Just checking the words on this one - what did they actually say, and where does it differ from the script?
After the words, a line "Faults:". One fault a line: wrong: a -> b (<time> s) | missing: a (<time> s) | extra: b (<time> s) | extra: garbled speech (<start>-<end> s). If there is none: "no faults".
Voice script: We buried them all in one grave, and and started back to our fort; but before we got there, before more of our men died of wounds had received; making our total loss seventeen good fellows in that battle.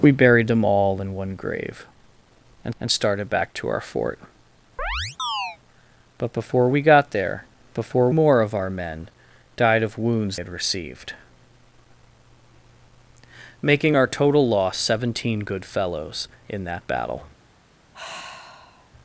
We buried them all in one grave, and and started back to our fort; but before we got there, before more of our men died of wounds had received; making our total loss seventeen good fellows in that battle.
Faults:
no faults